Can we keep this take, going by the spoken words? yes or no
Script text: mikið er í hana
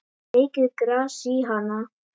no